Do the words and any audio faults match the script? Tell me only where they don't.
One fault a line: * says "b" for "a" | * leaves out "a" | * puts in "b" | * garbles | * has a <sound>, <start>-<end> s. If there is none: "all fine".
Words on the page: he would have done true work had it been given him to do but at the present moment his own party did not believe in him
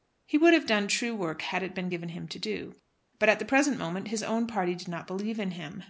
all fine